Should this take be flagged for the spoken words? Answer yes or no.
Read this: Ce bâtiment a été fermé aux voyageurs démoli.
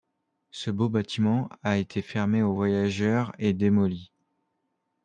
yes